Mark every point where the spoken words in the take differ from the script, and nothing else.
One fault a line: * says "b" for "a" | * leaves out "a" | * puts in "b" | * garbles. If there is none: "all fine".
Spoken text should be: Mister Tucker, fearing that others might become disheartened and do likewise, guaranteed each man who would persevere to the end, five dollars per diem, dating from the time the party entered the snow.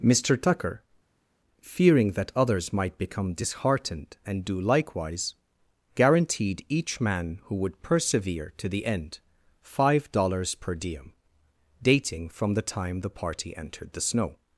all fine